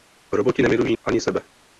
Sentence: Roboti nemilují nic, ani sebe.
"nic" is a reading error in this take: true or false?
true